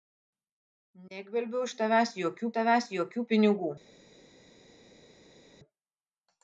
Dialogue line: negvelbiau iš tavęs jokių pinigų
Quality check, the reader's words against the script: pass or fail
fail